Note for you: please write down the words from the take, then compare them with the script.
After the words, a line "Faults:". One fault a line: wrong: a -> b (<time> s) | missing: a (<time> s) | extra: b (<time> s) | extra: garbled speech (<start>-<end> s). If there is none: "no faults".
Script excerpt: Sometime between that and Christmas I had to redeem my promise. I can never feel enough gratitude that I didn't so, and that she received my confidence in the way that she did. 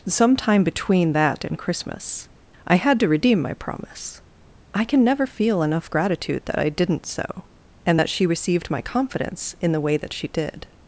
Sometime between that and Christmas I had to redeem my promise. I can never feel enough gratitude that I didn't so, and that she received my confidence in the way that she did.
Faults:
no faults